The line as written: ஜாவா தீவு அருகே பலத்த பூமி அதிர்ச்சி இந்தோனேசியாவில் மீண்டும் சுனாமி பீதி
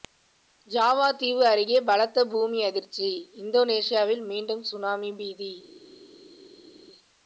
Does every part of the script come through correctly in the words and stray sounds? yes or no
yes